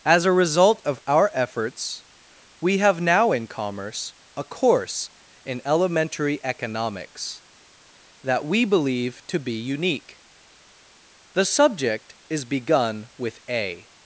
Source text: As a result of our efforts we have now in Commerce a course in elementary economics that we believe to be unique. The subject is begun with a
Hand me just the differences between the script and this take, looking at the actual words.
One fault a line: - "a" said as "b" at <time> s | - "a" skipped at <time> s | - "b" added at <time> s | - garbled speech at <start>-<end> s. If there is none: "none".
none